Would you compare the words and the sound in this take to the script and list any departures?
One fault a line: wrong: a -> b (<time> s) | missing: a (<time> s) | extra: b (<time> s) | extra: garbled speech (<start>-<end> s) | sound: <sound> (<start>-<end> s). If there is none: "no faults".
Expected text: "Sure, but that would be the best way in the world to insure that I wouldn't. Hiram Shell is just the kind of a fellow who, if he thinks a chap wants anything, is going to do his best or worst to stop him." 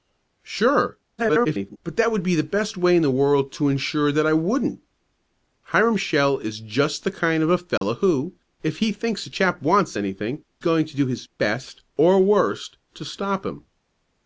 extra: garbled speech (1.2-1.8 s)
sound: dropout (7.8-7.8 s)
missing: is (10.4 s)